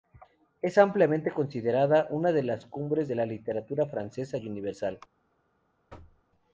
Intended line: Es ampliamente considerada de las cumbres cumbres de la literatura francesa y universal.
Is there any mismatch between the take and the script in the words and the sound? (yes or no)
yes